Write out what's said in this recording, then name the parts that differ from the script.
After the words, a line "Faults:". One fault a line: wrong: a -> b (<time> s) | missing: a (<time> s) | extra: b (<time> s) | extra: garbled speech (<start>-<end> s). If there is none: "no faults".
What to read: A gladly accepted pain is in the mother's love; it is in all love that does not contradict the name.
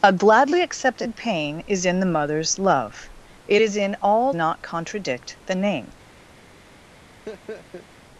A gladly accepted pain is in the mother's love; it is in all not contradict the name.
Faults:
missing: love that does (4.3 s)